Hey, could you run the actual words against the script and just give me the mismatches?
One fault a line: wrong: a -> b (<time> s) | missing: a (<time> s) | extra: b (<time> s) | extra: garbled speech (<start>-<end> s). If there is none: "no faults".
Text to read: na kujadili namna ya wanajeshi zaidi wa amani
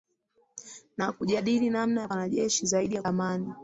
no faults